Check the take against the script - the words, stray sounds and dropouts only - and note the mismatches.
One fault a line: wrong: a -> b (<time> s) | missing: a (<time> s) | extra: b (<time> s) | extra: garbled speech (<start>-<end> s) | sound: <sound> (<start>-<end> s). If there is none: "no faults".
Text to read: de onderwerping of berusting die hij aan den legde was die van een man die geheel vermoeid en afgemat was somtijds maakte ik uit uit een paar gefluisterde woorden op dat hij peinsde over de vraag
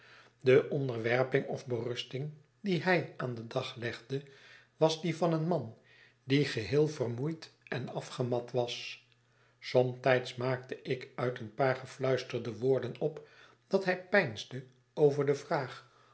extra: dag (3.5 s)
missing: uit (11.4 s)